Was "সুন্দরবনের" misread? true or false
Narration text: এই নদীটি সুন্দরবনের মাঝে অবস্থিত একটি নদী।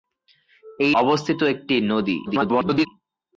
true